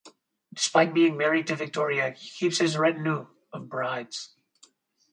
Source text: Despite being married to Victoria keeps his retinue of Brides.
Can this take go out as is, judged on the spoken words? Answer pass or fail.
fail